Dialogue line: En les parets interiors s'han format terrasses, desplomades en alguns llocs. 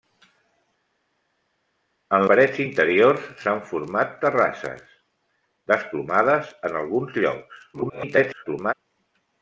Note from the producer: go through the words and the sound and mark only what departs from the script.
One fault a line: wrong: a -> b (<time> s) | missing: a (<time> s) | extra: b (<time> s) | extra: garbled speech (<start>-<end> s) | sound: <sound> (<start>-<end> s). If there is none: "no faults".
missing: les (2.2 s)
extra: garbled speech (7.7-8.7 s)